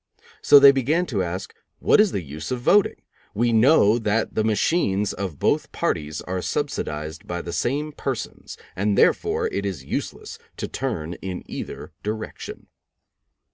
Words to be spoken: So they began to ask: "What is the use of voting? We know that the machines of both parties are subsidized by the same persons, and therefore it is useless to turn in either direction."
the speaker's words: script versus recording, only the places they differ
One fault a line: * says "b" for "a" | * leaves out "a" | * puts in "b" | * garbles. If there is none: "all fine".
all fine